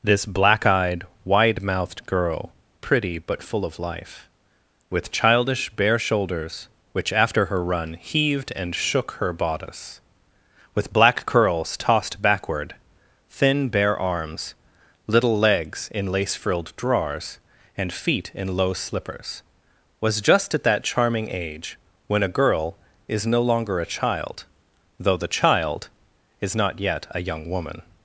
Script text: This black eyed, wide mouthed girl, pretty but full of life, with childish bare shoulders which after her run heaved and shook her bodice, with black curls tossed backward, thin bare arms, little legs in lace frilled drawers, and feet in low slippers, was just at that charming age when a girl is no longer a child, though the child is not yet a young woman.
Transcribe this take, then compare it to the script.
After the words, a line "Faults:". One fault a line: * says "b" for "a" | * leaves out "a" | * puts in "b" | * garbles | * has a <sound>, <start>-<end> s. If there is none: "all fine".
This black eyed, wide mouthed girl, pretty but full of life, with childish bare shoulders which after her run heaved and shook her bodice, with black curls tossed backward, thin bare arms, little legs in lace frilled drawers, and feet in low slippers, was just at that charming age when a girl is no longer a child, though the child is not yet a young woman.
Faults:
all fine